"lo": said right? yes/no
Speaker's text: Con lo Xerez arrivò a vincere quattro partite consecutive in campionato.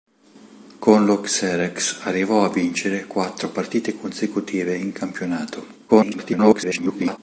yes